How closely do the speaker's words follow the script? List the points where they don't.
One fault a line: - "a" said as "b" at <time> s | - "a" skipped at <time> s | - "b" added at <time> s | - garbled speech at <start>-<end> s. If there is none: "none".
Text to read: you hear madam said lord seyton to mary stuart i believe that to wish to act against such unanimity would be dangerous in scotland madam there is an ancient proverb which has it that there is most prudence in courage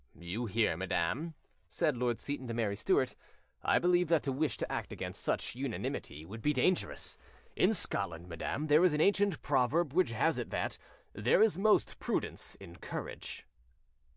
none